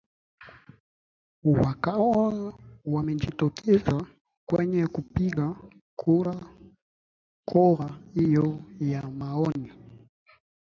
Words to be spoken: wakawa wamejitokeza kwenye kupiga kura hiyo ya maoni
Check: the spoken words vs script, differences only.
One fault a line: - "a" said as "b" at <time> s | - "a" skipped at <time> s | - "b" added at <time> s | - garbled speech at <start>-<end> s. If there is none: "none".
none